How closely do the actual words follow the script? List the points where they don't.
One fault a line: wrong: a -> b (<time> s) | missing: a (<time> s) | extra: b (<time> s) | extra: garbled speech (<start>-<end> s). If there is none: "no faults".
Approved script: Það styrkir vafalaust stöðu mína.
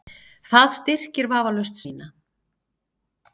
missing: stöðu (1.8 s)